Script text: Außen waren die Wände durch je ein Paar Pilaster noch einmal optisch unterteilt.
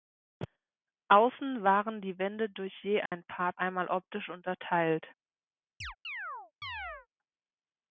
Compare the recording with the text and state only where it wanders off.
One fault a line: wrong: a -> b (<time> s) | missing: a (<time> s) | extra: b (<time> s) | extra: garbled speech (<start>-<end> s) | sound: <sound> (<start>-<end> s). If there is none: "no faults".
sound: dropout (3.1-3.1 s)
missing: Pilaster noch (3.5 s)
sound: chirp (5.8-7.1 s)